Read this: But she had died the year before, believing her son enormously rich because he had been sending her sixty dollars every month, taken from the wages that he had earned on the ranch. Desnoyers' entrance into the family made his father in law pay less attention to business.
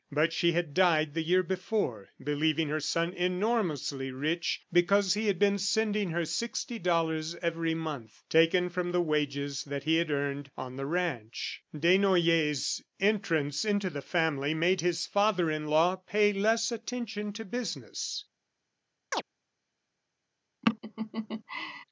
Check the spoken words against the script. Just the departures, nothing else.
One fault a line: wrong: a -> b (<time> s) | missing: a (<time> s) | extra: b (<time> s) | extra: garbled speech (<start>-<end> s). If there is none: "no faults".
no faults